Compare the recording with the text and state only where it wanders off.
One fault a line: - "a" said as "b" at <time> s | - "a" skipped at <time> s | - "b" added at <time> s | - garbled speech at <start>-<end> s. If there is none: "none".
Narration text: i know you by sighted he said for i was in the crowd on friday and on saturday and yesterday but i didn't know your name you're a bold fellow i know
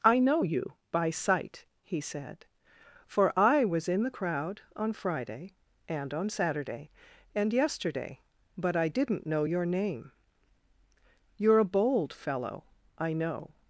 - "sighted" said as "sight" at 1.1 s